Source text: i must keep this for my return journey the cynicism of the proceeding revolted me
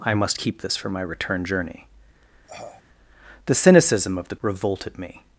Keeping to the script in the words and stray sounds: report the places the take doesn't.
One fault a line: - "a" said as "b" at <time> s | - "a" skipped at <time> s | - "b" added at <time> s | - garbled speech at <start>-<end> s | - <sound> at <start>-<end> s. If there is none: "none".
- cough at 2.5-2.8 s
- "proceeding" skipped at 4.4 s